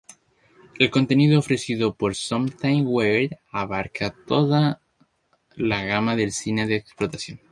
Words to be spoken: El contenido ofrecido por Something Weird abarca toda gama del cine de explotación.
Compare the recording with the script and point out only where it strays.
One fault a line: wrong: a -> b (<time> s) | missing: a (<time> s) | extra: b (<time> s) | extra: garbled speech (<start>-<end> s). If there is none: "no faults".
extra: la (5.5 s)